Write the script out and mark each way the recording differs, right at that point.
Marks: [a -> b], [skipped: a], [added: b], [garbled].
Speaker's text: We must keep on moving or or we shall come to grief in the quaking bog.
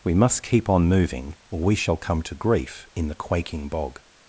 We must keep on moving or [skipped: or] we shall come to grief in the quaking bog.